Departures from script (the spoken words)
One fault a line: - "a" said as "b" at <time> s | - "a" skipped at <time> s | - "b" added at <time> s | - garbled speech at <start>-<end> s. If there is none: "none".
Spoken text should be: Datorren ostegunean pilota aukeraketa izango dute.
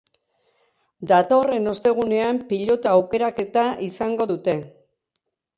none